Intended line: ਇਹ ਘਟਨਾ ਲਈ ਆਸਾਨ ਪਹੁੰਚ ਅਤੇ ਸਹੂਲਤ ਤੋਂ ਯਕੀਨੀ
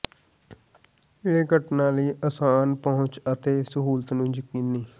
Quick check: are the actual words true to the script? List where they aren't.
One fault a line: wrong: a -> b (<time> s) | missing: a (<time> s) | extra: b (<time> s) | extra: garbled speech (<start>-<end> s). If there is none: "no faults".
wrong: ਤੋਂ -> ਨੂੰ (4.1 s)